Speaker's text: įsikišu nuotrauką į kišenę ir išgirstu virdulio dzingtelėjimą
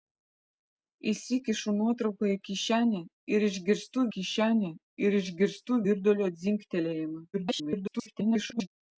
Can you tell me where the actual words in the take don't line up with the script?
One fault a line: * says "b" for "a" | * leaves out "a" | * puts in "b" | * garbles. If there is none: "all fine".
* puts in "kišenę ir išgirstu"
* garbles